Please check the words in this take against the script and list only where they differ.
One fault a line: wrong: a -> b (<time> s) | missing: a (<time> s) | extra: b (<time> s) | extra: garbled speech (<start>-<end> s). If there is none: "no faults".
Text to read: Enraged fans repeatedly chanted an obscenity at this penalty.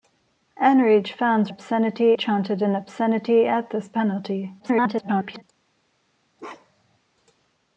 wrong: repeatedly -> obscenity (1.5 s)
extra: garbled speech (4.6-5.4 s)